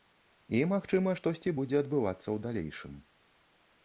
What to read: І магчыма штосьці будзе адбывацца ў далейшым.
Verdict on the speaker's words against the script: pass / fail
pass